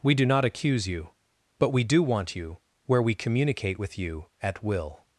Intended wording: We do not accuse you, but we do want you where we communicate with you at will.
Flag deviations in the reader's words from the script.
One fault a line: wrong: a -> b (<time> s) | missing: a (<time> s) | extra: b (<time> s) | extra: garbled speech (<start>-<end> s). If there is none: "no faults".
no faults